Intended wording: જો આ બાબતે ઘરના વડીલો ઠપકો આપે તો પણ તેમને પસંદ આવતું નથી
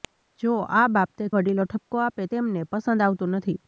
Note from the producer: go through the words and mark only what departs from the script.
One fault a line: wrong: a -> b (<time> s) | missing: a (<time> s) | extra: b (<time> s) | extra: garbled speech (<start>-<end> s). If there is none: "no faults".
missing: ઘરના (1.3 s)
missing: તો પણ (2.2 s)